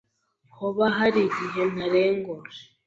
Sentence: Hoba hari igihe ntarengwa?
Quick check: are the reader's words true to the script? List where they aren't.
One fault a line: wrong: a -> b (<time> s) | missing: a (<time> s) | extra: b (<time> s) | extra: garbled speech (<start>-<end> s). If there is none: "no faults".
no faults